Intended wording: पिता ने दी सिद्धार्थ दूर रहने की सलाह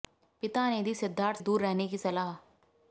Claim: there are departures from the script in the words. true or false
false